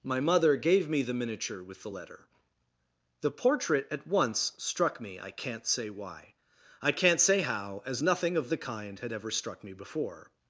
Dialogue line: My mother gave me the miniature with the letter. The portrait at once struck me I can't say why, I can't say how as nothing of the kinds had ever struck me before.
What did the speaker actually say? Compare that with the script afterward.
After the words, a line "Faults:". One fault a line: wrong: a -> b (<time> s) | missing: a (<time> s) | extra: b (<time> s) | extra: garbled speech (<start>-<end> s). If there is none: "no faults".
My mother gave me the miniature with the letter. The portrait at once struck me I can't say why, I can't say how as nothing of the kind had ever struck me before.
Faults:
wrong: kinds -> kind (8.6 s)